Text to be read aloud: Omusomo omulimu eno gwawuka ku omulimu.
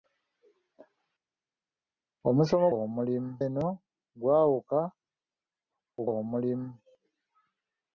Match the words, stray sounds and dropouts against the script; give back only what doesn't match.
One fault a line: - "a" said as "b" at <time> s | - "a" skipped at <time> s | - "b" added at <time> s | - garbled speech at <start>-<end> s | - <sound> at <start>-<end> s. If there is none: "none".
none